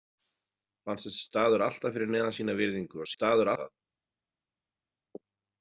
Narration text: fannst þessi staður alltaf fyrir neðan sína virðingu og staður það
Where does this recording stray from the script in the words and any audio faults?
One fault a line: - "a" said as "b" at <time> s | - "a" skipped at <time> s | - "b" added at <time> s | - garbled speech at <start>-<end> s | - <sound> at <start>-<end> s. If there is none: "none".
none